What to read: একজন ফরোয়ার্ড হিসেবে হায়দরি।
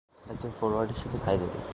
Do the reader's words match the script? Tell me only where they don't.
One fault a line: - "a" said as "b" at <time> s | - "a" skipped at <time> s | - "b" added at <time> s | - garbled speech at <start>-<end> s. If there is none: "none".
none